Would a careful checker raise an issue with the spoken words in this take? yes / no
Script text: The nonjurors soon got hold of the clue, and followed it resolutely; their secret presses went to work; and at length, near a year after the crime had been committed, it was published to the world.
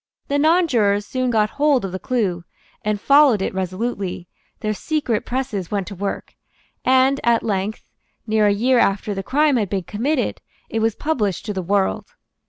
no